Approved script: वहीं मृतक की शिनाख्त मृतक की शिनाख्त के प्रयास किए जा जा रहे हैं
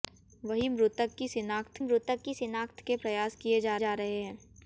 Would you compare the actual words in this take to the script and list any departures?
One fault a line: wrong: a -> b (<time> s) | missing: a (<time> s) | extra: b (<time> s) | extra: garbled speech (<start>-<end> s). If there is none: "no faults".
no faults